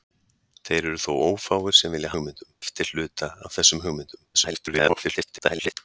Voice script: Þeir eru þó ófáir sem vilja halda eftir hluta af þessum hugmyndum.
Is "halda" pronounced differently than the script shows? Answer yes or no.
yes